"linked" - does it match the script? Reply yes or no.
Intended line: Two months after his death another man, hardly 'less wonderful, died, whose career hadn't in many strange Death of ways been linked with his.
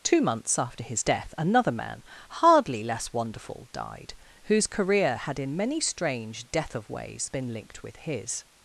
yes